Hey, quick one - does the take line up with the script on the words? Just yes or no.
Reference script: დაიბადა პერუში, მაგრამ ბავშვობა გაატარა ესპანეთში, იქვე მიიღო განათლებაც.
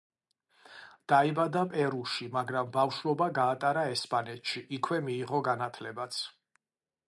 yes